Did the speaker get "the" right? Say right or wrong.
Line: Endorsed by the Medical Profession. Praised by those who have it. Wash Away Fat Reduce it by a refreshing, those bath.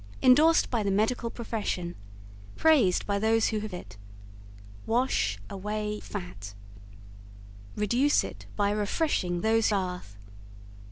right